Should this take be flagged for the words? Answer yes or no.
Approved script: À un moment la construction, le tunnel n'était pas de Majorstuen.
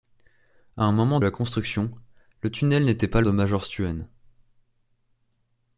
no